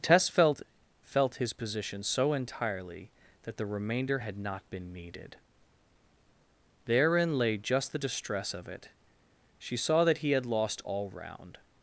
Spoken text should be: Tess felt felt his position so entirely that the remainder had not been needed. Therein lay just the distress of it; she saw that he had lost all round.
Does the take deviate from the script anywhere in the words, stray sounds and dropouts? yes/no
no